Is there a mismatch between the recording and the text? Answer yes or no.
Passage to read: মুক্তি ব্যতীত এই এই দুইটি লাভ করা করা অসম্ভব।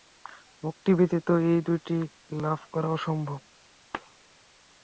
yes